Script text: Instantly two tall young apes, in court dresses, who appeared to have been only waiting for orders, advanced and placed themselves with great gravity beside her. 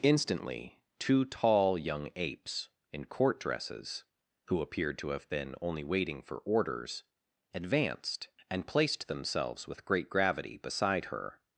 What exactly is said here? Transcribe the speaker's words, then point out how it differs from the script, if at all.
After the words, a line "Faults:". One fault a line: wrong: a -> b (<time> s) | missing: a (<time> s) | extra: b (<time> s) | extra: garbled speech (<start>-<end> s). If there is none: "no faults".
Instantly two tall young apes, in court dresses, who appeared to have been only waiting for orders, advanced and placed themselves with great gravity beside her.
Faults:
no faults